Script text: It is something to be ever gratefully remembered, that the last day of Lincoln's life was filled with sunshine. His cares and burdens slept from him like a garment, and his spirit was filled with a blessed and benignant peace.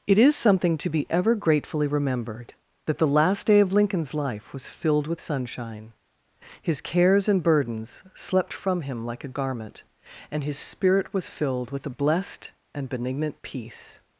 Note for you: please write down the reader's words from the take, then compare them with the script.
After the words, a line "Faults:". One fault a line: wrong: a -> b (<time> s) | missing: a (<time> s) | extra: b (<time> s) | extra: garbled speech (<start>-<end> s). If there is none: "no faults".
It is something to be ever gratefully remembered, that the last day of Lincoln's life was filled with sunshine. His cares and burdens slept from him like a garment, and his spirit was filled with a blessed and benignant peace.
Faults:
no faults